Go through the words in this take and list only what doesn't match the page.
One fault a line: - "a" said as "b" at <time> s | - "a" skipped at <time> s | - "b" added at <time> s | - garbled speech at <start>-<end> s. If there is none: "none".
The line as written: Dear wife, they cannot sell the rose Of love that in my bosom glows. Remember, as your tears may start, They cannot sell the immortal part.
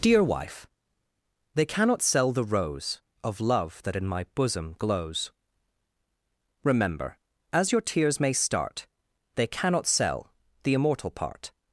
none